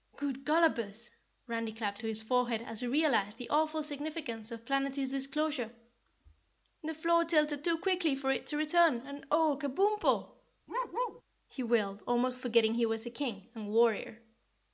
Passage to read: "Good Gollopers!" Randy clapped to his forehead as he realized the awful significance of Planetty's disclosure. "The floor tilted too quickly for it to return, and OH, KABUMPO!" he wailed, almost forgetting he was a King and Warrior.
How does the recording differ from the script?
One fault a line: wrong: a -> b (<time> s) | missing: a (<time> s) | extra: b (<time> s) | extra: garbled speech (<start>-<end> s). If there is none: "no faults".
no faults